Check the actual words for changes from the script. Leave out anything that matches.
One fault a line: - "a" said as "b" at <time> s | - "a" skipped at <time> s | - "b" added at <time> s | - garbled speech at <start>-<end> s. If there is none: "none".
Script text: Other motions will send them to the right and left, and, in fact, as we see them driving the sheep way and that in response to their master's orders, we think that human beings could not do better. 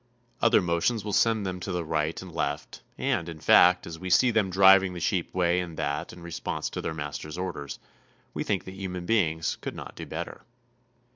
none